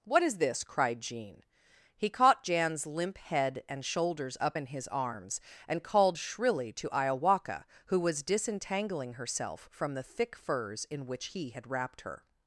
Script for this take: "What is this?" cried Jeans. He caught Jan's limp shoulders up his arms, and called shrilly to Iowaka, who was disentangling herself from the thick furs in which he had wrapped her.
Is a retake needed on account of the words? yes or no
yes